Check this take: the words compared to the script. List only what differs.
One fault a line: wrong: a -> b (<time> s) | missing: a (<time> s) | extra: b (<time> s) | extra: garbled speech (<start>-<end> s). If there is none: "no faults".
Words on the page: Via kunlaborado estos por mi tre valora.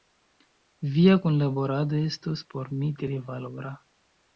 no faults